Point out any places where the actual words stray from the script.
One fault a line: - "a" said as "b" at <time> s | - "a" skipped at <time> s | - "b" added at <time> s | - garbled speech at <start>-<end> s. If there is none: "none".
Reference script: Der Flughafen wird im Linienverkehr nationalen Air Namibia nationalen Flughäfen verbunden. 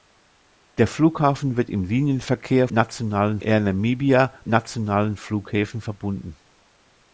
none